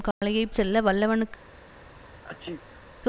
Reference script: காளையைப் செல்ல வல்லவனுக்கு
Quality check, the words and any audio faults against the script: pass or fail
fail